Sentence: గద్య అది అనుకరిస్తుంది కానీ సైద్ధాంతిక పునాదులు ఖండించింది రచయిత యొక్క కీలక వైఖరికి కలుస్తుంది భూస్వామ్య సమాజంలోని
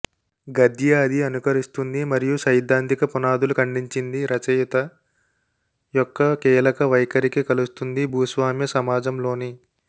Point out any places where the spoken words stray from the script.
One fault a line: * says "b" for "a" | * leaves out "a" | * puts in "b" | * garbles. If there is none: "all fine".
* says "మరియు" for "కానీ"